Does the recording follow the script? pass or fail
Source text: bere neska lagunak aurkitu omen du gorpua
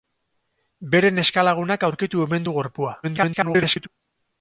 fail